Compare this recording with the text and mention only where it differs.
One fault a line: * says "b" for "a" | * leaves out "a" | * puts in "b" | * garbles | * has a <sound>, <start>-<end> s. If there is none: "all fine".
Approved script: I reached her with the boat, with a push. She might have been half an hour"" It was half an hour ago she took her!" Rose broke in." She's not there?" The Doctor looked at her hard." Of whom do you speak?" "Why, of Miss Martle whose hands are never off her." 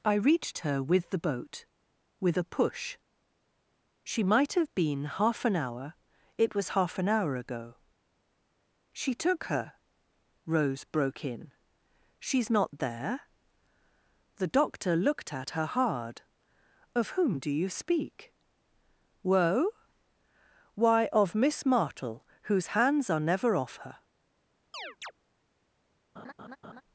* puts in "woe"
* has a chirp, 24.7-25.1 s
* has a laugh, 26.2-26.8 s